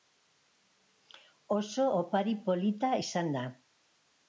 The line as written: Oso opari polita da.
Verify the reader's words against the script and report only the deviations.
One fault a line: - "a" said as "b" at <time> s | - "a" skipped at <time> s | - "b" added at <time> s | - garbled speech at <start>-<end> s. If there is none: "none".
- "izan" added at 3.0 s